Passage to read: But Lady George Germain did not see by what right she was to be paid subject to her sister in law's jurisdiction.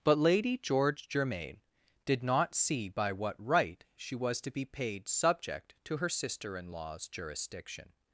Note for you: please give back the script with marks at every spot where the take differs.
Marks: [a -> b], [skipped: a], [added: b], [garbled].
But Lady George Germain did not see by what right she was to be paid subject to her sister in law's jurisdiction.